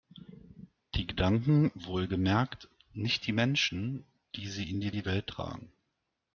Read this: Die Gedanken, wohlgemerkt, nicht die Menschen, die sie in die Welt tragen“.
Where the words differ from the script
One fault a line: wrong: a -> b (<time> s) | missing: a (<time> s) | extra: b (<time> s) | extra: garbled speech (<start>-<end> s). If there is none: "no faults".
extra: die (4.9 s)